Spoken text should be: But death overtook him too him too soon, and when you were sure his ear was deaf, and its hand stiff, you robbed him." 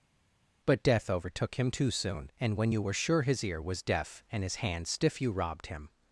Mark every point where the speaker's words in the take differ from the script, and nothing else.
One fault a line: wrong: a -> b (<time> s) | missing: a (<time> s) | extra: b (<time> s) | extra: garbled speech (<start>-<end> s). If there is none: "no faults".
missing: him too (1.9 s)
wrong: its -> his (4.4 s)